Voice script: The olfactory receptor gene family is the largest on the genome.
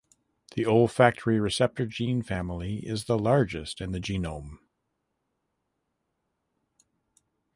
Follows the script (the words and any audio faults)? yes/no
no